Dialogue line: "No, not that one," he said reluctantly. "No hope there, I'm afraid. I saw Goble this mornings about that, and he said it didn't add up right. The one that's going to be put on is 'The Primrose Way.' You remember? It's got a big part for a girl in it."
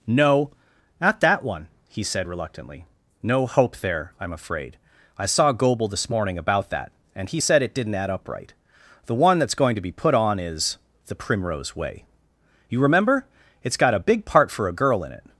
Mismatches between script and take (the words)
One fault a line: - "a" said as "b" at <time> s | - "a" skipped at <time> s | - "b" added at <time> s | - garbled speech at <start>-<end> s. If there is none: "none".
- "mornings" said as "morning" at 6.1 s